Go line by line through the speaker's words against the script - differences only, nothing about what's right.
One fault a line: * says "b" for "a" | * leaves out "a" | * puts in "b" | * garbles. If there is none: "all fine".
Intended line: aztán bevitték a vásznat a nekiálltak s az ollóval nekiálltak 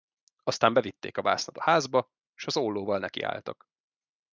* says "házba" for "nekiálltak"